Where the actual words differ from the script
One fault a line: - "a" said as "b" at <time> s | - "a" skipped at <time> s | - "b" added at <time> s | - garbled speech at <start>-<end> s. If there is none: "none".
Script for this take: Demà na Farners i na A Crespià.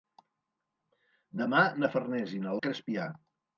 none